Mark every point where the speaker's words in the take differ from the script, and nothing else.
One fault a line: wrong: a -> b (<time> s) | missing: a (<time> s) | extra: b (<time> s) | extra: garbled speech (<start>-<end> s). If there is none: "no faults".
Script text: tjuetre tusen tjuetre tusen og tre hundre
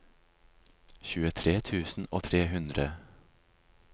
missing: tjuetre tusen (2.1 s)